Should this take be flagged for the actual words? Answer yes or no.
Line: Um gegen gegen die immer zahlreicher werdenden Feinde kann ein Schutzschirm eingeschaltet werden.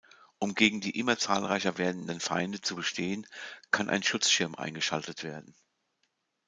yes